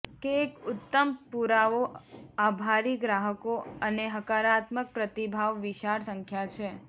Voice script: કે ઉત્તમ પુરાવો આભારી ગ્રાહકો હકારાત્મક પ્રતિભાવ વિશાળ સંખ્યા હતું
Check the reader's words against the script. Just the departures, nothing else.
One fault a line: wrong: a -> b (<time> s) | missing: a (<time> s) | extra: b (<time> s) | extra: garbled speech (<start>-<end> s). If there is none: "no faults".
extra: એક (0.3 s)
extra: અને (3.8 s)
wrong: હતું -> છે (6.5 s)